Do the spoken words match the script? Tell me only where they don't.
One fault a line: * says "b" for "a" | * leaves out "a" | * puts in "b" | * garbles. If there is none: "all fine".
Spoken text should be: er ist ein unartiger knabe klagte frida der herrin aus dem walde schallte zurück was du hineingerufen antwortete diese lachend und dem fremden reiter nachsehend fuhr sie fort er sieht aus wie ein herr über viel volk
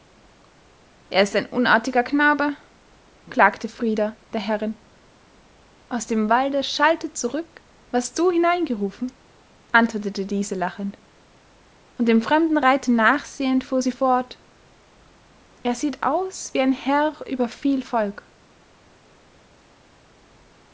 all fine